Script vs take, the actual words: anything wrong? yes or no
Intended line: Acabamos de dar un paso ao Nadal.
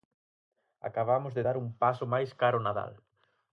yes